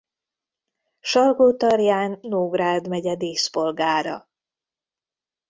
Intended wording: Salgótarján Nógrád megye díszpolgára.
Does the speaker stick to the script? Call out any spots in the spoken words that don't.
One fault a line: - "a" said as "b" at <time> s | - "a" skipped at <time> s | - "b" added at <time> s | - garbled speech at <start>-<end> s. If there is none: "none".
none